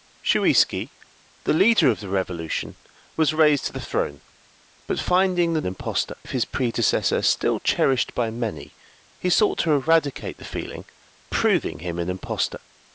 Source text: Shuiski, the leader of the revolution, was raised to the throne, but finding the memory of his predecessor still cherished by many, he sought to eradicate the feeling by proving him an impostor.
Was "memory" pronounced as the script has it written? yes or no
no